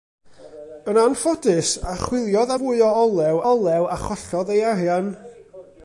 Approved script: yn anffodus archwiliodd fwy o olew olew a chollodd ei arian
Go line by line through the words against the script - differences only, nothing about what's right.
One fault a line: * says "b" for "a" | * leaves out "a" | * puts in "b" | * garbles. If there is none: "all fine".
all fine